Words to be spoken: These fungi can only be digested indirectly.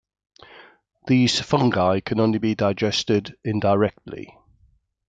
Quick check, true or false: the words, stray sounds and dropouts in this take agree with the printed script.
true